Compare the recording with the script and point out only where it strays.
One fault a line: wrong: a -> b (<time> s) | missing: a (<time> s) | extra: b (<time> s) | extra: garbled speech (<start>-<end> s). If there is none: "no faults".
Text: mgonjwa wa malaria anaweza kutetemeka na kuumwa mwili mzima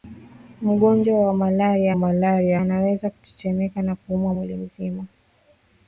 extra: malaria (1.9 s)